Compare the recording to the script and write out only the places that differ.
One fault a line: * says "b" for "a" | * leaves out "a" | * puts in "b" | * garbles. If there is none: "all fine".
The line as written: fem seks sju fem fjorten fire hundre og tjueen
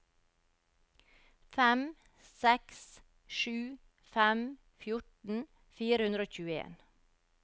all fine